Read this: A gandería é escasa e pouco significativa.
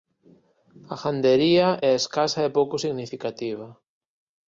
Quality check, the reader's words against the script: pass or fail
pass